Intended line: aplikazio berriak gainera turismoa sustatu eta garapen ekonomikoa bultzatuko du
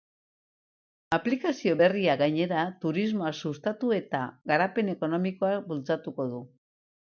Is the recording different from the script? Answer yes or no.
no